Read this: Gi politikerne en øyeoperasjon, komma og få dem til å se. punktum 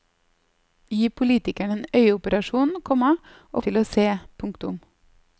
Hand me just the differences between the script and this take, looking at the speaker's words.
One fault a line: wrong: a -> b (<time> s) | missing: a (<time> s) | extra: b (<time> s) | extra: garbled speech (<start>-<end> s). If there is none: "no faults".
missing: få dem (3.6 s)